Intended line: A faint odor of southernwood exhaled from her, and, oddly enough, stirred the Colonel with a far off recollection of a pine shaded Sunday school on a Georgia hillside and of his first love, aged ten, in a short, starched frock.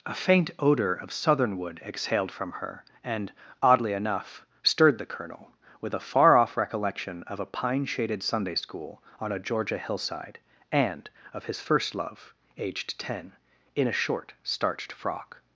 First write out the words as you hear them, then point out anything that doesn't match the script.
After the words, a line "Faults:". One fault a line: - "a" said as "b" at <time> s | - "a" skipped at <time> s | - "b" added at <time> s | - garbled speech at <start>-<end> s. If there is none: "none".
A faint odor of southernwood exhaled from her, and, oddly enough, stirred the Colonel with a far off recollection of a pine shaded Sunday school on a Georgia hillside and of his first love, aged ten, in a short, starched frock.
Faults:
none